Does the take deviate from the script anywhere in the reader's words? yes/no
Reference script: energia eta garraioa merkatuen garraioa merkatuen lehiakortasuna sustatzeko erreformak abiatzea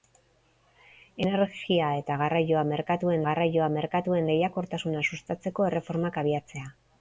no